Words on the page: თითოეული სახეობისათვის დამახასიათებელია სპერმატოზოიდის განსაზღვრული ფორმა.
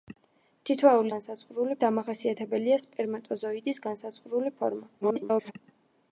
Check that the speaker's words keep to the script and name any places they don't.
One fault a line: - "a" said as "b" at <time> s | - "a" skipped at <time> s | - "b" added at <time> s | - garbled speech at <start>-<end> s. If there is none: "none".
- "სახეობისათვის" said as "განსაზღვრული" at 1.1 s
- garbled speech at 5.0-5.5 s